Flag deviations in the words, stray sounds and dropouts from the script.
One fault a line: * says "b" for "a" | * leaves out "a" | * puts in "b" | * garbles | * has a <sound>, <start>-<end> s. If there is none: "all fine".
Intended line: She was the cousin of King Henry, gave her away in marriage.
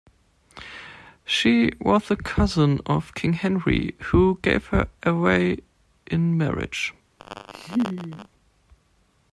* puts in "who"
* has a laugh, 7.2-8.3 s